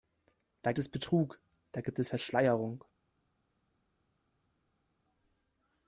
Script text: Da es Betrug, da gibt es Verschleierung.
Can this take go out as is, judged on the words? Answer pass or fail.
pass